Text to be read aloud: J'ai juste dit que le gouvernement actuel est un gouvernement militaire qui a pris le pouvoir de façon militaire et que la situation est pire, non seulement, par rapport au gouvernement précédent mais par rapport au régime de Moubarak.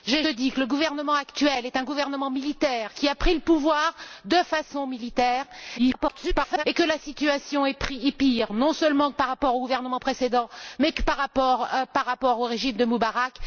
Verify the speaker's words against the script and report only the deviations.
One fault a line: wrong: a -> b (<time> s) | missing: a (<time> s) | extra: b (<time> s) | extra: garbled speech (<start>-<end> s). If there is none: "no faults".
missing: juste (0.2 s)
extra: garbled speech (5.8-6.6 s)